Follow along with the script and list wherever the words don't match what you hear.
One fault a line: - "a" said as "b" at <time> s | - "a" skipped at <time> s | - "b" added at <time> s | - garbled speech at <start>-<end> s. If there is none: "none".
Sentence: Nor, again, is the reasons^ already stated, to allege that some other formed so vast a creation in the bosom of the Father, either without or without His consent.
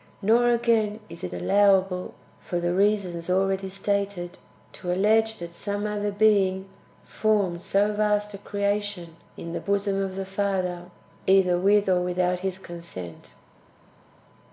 - "it allowable for" added at 1.2 s
- "being" added at 6.1 s
- "without" said as "with" at 11.6 s